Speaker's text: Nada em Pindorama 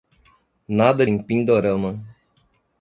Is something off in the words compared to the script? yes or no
no